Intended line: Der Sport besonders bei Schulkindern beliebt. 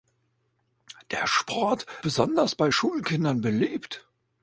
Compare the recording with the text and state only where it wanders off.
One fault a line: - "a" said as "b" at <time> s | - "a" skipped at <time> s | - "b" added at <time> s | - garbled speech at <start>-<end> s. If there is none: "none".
none